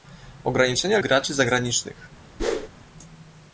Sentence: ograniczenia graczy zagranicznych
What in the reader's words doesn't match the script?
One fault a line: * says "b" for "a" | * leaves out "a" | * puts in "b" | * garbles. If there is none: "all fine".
all fine